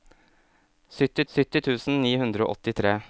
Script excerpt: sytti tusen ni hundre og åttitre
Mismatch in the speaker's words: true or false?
true